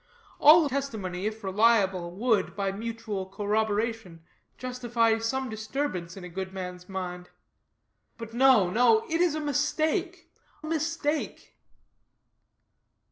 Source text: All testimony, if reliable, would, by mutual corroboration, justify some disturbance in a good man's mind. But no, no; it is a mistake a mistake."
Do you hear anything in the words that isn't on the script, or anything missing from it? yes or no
no